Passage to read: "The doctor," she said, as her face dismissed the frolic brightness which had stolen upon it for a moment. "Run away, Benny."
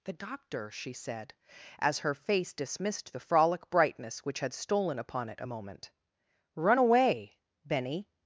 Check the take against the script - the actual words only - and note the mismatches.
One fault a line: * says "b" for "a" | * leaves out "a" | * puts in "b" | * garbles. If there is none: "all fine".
* leaves out "for"